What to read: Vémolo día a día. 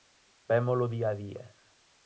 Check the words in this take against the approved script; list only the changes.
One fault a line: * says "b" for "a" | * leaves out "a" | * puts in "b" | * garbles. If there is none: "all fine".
all fine